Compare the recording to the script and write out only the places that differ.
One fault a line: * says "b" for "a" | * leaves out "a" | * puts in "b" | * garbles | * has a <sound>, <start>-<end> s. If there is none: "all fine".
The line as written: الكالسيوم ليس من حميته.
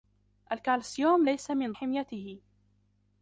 all fine